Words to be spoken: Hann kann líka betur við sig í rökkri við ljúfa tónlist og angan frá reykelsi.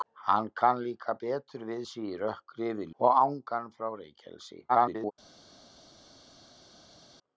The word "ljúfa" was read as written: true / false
false